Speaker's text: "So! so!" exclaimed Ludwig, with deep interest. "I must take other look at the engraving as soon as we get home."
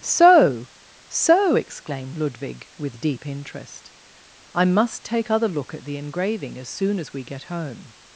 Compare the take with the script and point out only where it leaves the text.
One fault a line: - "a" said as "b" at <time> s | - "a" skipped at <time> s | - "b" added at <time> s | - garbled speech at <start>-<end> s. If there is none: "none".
none